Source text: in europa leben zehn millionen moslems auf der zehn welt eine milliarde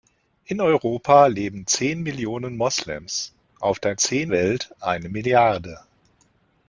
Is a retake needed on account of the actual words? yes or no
no